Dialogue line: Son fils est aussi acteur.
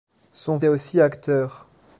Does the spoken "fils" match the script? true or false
false